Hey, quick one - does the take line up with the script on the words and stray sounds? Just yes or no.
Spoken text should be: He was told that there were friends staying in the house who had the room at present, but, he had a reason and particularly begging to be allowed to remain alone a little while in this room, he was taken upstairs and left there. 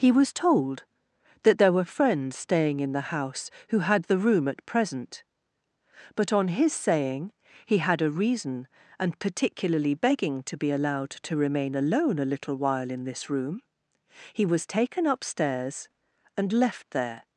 no